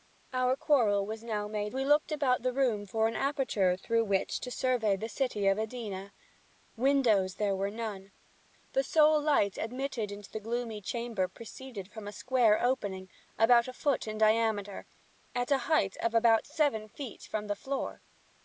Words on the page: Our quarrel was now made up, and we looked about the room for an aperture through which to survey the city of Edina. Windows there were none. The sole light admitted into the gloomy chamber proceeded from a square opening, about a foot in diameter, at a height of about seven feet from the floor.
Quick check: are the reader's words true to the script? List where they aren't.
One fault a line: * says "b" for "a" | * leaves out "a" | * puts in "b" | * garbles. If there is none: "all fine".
* leaves out "up and"